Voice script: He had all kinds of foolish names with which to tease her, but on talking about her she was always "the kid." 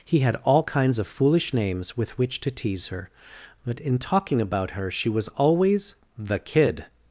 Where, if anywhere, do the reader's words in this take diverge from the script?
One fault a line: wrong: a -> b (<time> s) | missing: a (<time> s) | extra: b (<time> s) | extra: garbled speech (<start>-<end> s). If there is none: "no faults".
wrong: on -> in (3.8 s)